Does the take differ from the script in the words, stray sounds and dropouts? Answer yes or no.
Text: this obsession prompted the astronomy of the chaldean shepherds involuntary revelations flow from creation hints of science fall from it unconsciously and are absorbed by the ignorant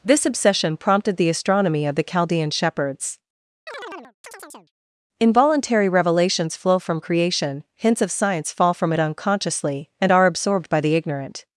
yes